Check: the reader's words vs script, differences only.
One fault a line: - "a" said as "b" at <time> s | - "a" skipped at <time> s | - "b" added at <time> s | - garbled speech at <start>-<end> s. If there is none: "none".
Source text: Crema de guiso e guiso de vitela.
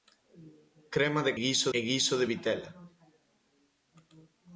none